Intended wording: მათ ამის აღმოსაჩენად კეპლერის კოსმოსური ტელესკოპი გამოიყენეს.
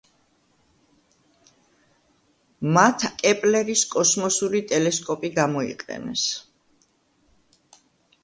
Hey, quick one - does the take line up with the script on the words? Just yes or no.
no